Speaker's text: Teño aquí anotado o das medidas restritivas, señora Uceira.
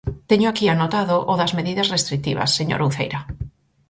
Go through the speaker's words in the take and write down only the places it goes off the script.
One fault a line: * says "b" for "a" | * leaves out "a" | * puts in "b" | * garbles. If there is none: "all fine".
all fine